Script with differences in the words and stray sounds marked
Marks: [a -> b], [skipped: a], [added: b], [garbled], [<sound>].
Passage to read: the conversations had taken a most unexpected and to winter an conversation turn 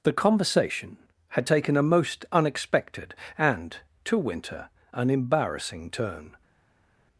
the [conversations -> conversation] had taken a most unexpected and to winter an [conversation -> embarrassing] turn